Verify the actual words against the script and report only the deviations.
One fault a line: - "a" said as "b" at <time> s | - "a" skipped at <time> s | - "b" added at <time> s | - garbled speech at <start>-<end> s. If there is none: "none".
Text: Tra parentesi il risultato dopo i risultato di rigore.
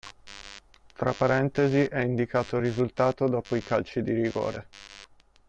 - "è indicato" added at 1.8 s
- "risultato" said as "calci" at 3.6 s